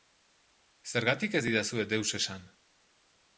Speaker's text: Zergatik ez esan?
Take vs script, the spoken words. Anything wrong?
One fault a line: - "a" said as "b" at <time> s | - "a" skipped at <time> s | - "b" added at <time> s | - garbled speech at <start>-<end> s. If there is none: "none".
- "didazue deus" added at 1.5 s